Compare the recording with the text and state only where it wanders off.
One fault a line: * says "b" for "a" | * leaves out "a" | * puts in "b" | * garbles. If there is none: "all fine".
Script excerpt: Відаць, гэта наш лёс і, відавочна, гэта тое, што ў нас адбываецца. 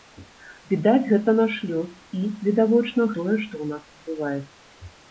* leaves out "гэта"